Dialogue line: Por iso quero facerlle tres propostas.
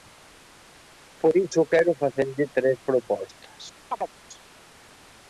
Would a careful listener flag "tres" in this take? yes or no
no